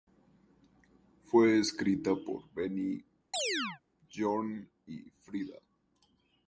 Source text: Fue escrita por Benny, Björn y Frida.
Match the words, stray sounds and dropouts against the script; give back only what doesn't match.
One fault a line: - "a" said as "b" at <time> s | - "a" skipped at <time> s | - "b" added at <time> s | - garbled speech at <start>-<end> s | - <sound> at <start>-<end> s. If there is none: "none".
- chirp at 3.3-3.8 s